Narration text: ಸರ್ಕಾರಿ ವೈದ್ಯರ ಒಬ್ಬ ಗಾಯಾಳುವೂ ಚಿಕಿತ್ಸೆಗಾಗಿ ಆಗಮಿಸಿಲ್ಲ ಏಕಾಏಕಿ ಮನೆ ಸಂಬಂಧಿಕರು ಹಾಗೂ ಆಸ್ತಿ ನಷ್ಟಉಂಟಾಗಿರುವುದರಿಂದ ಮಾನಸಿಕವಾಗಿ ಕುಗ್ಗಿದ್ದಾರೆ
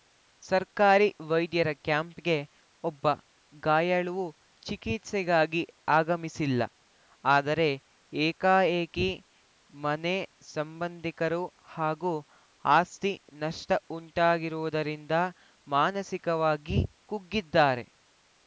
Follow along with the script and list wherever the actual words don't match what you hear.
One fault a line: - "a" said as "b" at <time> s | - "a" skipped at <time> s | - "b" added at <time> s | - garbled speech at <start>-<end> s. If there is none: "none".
- "ಕ್ಯಾಂಪ್‌ಗೆ" added at 1.8 s
- "ಆದರೆ" added at 7.2 s